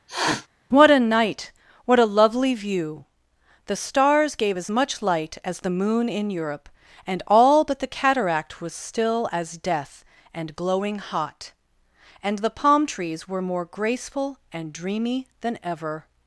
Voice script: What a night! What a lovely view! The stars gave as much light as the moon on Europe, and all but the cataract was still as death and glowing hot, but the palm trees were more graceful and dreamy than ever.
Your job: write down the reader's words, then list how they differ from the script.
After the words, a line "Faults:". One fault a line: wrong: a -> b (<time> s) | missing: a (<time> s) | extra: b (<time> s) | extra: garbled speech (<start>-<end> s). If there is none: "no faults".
What a night! What a lovely view! The stars gave as much light as the moon in Europe, and all but the cataract was still as death and glowing hot, and the palm trees were more graceful and dreamy than ever.
Faults:
wrong: on -> in (6.1 s)
wrong: but -> and (12.2 s)